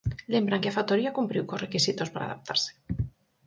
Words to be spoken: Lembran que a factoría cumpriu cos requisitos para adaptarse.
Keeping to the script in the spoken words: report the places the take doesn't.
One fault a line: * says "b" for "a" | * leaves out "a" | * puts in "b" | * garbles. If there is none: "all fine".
all fine